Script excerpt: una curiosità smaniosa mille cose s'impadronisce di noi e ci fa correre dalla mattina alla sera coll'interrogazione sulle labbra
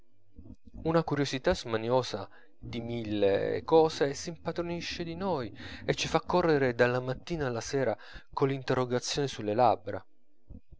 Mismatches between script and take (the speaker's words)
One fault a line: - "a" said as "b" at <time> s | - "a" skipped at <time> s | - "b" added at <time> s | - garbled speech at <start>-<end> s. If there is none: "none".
- "di" added at 2.6 s